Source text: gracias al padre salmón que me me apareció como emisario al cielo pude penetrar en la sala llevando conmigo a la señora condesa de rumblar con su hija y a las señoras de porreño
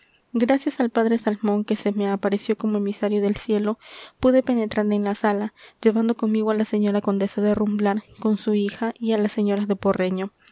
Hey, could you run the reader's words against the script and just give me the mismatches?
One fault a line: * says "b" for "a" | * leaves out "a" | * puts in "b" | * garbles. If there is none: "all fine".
* says "se" for "me"
* says "del" for "al"